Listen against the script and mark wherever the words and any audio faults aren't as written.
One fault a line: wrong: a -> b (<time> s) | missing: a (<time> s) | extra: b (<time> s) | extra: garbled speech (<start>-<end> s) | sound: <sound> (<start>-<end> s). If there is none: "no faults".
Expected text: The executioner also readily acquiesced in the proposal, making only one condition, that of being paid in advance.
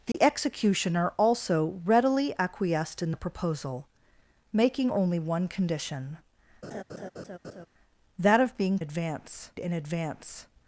sound: dropout (0.1-0.1 s)
sound: laugh (6.6-7.7 s)
wrong: paid -> advance (8.8 s)